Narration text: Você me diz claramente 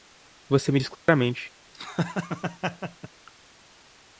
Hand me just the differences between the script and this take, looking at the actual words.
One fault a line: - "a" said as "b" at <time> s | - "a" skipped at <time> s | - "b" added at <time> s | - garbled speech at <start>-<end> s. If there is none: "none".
none